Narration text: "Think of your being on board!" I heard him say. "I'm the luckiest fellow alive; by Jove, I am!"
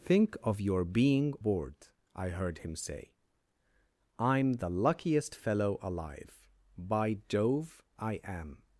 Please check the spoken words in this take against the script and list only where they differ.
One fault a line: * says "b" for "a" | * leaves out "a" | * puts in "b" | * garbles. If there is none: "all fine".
* leaves out "on"